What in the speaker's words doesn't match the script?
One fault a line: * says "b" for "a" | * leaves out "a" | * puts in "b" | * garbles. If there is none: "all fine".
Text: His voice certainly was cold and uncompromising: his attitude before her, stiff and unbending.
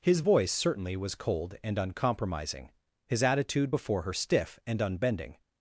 all fine